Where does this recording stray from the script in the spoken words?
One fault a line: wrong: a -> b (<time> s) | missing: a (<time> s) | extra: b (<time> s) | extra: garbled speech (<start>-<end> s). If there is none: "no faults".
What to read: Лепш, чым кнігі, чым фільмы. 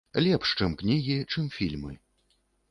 no faults